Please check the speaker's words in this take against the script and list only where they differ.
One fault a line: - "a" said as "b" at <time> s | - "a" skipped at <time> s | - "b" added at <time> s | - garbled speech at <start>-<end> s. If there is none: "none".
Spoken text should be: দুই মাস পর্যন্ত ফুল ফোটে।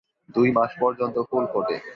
none